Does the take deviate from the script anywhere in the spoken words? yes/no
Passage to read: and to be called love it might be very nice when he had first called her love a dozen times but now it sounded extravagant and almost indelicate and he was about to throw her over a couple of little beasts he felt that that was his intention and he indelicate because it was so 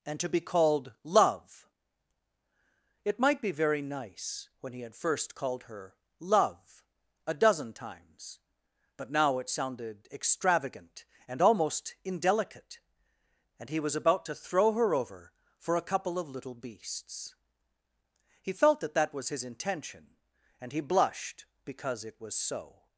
yes